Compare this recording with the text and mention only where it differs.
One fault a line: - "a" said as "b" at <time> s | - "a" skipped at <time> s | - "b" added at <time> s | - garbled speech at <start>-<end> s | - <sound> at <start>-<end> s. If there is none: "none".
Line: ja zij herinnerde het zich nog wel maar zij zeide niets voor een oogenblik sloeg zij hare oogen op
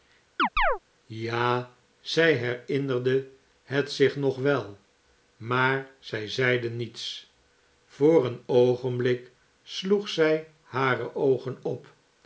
- chirp at 0.4-0.8 s